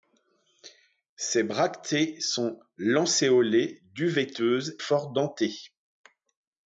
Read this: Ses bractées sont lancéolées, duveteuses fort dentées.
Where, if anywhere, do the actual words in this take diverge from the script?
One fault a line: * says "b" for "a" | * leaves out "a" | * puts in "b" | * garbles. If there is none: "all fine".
all fine